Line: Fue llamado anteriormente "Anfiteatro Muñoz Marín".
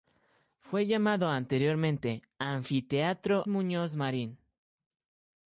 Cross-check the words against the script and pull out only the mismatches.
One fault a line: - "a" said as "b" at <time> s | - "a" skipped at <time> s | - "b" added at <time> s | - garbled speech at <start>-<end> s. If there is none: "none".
none